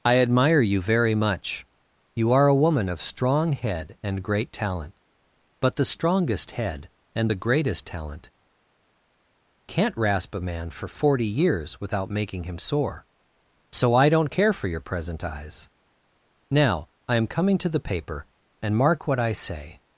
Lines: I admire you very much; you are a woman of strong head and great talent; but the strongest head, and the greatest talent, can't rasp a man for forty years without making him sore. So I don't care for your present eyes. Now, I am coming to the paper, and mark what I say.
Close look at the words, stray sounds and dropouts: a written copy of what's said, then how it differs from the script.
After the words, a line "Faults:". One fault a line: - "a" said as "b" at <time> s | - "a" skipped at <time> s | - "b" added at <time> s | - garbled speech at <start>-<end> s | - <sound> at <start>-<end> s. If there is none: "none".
I admire you very much; you are a woman of strong head and great talent; but the strongest head, and the greatest talent, can't rasp a man for forty years without making him sore. So I don't care for your present eyes. Now, I am coming to the paper, and mark what I say.
Faults:
none